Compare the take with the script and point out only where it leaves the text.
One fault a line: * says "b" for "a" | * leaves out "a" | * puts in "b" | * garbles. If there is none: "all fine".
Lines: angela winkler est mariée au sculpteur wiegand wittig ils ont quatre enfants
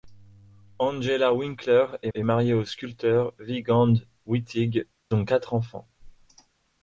* puts in "est"
* leaves out "ils"